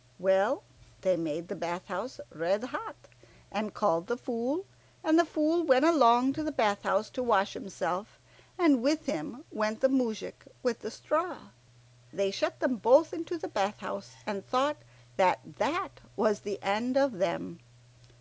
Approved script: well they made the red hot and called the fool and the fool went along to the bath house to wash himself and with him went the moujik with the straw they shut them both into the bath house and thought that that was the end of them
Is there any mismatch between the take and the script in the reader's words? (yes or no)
yes